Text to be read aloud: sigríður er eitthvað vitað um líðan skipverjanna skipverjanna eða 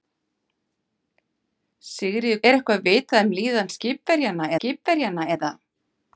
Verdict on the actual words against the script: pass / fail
pass